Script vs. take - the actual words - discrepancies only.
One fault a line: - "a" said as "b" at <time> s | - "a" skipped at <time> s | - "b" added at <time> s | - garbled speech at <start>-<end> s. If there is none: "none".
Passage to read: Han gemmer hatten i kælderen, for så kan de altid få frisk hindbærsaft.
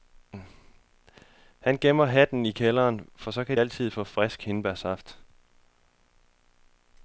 - "de" skipped at 3.6 s